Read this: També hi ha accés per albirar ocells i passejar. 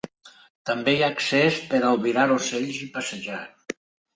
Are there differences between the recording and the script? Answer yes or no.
no